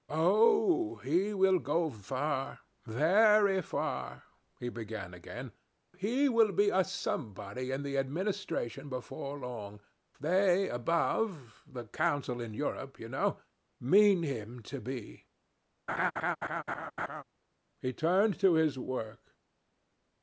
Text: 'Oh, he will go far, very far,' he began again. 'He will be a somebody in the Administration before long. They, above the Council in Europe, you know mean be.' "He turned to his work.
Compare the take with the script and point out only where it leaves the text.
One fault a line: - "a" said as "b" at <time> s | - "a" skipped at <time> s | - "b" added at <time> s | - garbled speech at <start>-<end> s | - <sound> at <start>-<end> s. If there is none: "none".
- "him to" added at 14.2 s
- laugh at 15.9-17.2 s